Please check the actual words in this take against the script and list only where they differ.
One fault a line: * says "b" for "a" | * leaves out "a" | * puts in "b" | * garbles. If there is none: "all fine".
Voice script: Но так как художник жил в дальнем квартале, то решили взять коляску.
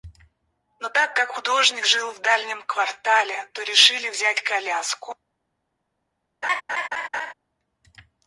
all fine